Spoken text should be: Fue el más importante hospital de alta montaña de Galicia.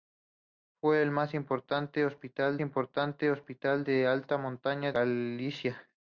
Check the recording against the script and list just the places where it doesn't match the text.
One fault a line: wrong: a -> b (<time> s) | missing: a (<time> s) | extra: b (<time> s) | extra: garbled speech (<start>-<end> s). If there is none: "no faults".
extra: importante hospital (2.6 s)
missing: de (4.9 s)